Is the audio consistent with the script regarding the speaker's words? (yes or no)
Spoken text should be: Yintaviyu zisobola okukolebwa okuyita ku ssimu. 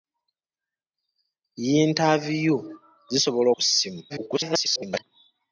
no